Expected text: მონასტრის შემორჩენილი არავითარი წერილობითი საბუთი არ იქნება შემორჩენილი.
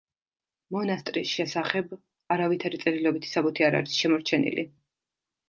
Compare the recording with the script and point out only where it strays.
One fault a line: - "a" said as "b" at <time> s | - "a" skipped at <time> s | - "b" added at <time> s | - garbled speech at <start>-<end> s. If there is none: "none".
- "შემორჩენილი" said as "შესახებ" at 1.4 s
- "იქნება" said as "არის" at 3.8 s